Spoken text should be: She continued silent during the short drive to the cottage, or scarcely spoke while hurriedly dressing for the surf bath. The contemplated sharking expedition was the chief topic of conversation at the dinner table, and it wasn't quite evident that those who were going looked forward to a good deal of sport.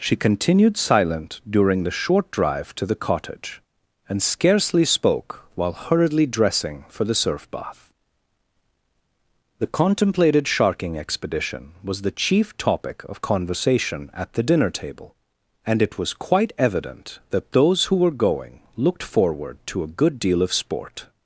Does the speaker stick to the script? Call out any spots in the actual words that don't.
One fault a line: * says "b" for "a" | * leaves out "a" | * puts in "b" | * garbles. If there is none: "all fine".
* says "and" for "or"
* says "was" for "wasn't"